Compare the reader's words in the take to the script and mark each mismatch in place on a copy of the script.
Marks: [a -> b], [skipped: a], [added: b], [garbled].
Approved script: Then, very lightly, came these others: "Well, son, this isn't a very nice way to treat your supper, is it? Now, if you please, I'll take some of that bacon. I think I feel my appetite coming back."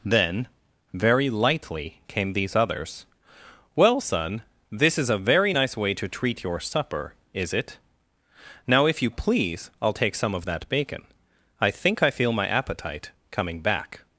Then, very lightly, came these others: "Well, son, this [isn't -> is] a very nice way to treat your supper, is it? Now, if you please, I'll take some of that bacon. I think I feel my appetite coming back."